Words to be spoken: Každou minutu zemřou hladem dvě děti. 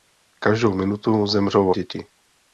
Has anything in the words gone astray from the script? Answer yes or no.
yes